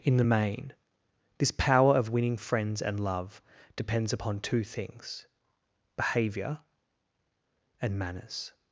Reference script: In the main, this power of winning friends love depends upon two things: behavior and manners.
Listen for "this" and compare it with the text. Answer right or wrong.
right